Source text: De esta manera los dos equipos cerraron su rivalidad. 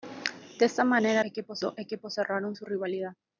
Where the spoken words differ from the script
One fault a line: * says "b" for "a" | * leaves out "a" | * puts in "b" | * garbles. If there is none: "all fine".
* says "equipos" for "los"